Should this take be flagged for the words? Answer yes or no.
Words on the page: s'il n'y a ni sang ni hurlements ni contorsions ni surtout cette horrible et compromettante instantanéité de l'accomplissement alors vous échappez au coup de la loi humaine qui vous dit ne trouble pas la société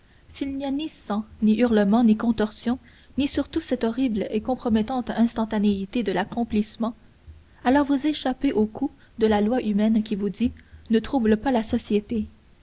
no